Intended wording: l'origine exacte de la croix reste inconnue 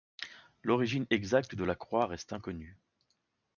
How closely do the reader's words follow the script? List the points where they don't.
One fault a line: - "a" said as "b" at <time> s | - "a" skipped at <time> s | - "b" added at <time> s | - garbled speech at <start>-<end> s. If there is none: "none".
none